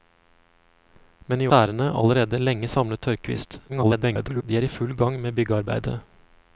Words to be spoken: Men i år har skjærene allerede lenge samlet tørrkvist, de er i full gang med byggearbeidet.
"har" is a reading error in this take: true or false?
true